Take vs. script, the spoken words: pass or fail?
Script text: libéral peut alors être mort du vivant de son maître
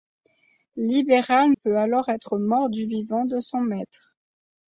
pass